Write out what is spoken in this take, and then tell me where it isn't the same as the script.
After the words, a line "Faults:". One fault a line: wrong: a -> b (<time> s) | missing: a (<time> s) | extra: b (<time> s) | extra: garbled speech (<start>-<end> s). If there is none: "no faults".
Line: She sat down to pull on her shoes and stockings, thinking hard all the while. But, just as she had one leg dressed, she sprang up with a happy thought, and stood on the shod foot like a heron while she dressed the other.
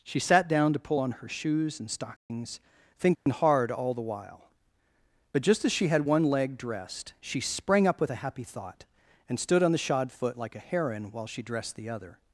She sat down to pull on her shoes and stockings, thinking hard all the while. But, just as she had one leg dressed, she sprang up with a happy thought, and stood on the shod foot like a heron while she dressed the other.
Faults:
no faults